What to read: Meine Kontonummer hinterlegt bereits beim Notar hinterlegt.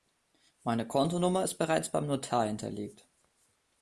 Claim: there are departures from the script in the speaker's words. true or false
true